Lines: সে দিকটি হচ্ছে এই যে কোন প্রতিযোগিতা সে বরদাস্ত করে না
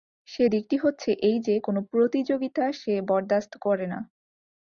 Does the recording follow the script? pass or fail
pass